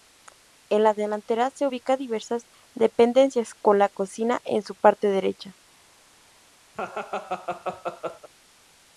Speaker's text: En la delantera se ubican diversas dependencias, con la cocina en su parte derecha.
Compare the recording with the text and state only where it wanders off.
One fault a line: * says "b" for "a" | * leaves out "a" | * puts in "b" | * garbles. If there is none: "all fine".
all fine